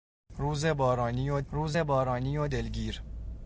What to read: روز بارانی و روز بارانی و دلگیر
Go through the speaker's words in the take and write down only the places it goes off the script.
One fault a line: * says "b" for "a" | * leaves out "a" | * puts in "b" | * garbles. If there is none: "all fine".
all fine